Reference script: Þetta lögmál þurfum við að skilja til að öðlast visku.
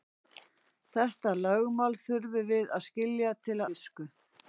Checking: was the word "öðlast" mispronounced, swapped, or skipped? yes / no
yes